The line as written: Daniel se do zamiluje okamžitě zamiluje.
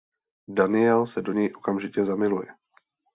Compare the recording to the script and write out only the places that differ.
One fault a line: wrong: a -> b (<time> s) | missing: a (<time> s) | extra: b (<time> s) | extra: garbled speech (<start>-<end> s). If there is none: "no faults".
wrong: zamiluje -> něj (1.3 s)